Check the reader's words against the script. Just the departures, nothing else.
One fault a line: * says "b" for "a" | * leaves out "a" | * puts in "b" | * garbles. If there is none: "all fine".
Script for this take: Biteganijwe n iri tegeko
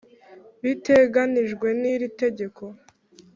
all fine